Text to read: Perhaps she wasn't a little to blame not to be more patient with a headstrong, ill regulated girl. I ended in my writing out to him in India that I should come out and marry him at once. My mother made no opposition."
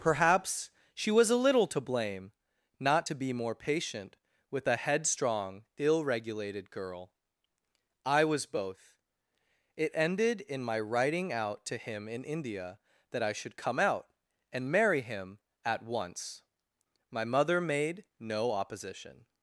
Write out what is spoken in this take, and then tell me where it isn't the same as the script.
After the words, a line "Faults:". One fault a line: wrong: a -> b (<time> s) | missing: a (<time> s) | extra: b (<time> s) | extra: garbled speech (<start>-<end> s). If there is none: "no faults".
Perhaps she was a little to blame not to be more patient with a headstrong, ill regulated girl. I was both. It ended in my writing out to him in India that I should come out and marry him at once. My mother made no opposition."
Faults:
wrong: wasn't -> was (1.1 s)
extra: was both It (8.2 s)